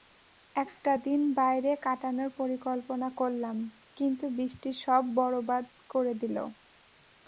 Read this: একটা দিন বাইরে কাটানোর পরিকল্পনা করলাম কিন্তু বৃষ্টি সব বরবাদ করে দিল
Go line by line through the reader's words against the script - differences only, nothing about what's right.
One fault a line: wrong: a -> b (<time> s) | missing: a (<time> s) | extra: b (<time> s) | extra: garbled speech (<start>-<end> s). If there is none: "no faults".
no faults